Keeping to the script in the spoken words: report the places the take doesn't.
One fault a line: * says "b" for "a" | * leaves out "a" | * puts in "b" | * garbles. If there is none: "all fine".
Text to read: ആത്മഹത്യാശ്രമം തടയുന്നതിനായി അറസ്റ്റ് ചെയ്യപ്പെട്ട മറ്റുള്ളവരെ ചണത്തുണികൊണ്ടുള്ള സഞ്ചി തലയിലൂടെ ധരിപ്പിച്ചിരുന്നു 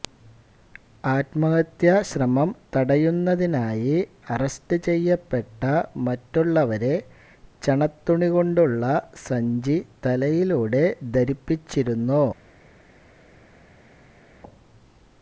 all fine